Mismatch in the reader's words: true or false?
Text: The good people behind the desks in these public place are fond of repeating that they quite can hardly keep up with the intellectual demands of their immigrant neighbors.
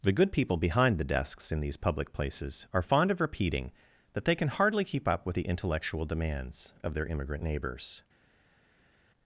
true